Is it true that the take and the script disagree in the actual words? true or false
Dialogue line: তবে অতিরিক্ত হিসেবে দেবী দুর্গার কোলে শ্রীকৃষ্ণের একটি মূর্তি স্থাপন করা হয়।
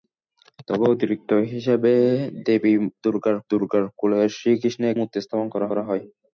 true